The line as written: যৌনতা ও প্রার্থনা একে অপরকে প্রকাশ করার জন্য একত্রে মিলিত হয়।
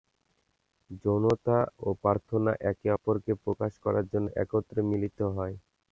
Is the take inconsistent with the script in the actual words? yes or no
no